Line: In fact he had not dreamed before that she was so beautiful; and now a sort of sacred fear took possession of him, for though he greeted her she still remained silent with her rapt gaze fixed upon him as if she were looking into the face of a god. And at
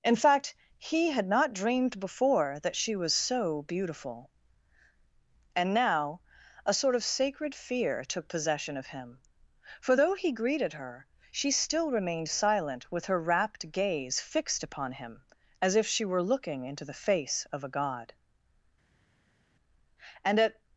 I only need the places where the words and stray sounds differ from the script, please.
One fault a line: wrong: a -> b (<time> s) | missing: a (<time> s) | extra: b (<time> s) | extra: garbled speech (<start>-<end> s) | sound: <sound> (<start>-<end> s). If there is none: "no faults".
no faults